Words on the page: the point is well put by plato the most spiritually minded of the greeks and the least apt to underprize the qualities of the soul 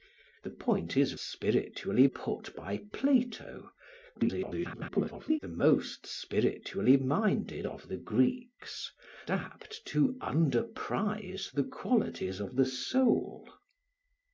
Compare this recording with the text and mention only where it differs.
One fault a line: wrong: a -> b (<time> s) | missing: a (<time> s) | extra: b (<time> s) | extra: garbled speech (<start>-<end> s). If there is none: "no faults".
wrong: well -> spiritually (1.2 s)
extra: garbled speech (4.1-5.4 s)
missing: and the least (8.9 s)